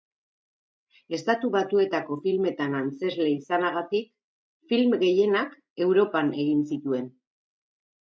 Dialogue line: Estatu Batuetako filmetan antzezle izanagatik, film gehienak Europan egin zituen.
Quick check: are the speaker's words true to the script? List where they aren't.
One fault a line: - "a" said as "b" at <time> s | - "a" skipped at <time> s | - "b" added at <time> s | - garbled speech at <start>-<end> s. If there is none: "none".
none